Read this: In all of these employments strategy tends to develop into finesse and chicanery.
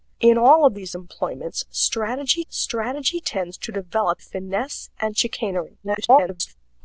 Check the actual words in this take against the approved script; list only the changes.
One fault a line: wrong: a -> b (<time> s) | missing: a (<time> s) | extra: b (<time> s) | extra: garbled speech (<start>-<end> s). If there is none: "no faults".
extra: strategy (2.5 s)
missing: into (4.2 s)
extra: garbled speech (5.8-6.6 s)